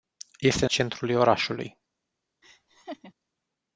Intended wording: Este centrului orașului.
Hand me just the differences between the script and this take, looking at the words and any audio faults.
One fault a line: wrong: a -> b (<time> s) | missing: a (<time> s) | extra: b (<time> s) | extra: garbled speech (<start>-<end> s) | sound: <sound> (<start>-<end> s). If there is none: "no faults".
sound: laugh (2.4-3.1 s)